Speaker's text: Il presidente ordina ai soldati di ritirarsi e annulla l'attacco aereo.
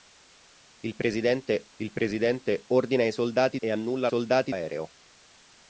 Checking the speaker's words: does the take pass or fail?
fail